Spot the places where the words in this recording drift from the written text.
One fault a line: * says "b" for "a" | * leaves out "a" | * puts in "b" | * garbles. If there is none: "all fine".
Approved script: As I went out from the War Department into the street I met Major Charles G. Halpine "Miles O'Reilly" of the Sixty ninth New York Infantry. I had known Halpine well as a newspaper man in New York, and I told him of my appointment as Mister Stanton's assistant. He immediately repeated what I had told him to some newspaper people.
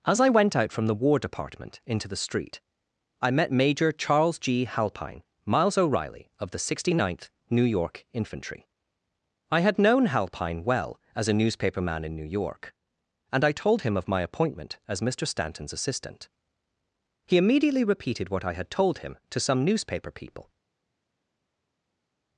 all fine